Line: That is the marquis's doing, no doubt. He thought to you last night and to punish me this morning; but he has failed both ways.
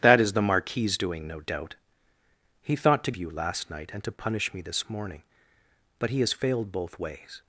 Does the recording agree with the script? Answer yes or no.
yes